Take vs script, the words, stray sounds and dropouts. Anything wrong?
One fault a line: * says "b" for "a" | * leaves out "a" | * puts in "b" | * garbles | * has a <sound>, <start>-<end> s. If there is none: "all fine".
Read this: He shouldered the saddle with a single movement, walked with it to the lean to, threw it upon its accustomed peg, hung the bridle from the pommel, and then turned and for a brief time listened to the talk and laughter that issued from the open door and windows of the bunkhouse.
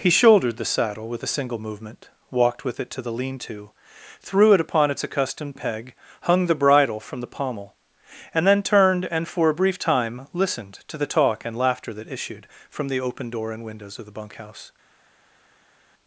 all fine